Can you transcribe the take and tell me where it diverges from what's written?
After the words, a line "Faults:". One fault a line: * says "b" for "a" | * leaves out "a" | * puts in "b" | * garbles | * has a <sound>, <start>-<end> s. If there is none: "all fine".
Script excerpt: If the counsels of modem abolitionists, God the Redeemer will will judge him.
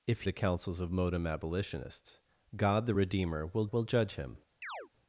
If the counsels of modem abolitionists, God the Redeemer will will judge him.
Faults:
* has a chirp, 4.6-4.9 s